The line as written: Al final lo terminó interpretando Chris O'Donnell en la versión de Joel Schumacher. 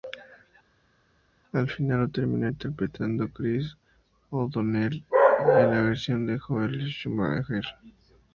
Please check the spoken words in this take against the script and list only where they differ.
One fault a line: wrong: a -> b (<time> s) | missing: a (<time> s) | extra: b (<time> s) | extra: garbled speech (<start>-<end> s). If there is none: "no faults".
no faults